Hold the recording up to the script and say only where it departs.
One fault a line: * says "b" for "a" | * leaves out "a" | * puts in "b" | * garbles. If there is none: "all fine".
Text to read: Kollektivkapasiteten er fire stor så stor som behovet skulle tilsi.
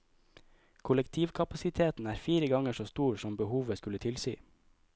* says "ganger" for "stor"